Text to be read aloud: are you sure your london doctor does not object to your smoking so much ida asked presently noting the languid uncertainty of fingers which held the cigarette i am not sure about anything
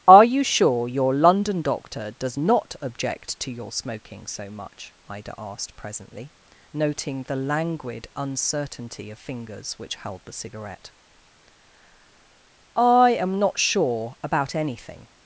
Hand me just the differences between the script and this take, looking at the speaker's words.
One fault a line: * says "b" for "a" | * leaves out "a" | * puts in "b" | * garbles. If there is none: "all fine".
all fine